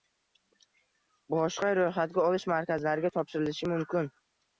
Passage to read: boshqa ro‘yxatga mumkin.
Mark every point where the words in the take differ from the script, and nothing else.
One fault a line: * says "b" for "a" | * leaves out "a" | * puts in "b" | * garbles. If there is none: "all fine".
* puts in "olish markazlariga topshirilishi"